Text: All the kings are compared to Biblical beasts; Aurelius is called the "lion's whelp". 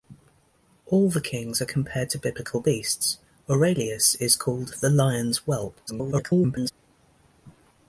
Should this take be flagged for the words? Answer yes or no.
yes